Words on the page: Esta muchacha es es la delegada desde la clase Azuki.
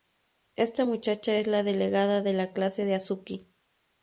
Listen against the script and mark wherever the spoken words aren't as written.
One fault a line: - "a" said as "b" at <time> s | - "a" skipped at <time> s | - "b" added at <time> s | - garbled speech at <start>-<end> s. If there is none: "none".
- "es" skipped at 1.5 s
- "desde" said as "de" at 2.2 s
- "de" added at 2.8 s